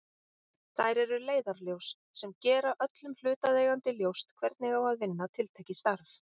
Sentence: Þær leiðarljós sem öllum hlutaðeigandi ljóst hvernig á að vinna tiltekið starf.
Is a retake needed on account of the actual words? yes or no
yes